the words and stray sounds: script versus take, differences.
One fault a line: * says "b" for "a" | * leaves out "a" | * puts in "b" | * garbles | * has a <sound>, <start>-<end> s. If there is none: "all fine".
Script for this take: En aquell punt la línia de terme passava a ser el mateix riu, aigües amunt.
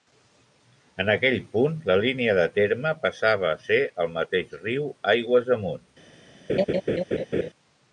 * has a laugh, 6.5-7.5 s